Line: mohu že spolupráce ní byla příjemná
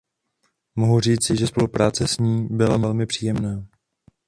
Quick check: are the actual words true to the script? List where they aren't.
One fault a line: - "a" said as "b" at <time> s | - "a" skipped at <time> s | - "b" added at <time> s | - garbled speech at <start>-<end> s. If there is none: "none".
- "říci" added at 1.0 s
- "s" added at 2.1 s
- "velmi" added at 2.8 s